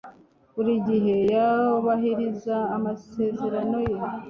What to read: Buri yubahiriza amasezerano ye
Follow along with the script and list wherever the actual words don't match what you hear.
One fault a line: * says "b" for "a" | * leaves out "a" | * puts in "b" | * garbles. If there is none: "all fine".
* puts in "gihe"